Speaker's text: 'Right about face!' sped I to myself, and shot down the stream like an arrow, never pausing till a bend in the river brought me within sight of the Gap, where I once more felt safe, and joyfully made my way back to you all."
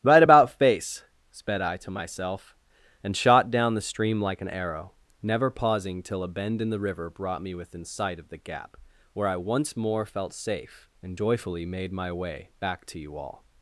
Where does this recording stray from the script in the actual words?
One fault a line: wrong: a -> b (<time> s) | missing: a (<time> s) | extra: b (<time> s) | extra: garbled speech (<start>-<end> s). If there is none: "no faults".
no faults